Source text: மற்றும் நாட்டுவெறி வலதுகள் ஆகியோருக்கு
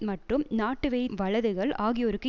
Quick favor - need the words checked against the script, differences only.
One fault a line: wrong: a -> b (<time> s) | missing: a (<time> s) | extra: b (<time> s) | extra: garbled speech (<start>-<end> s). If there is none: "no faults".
no faults